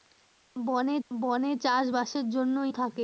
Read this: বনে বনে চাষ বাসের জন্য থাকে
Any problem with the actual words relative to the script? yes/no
no